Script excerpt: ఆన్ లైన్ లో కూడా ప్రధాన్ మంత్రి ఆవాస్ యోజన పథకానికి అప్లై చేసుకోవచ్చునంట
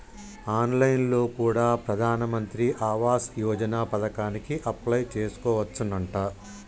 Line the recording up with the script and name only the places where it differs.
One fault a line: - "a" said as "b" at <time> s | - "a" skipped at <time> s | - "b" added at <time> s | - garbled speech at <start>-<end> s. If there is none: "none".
none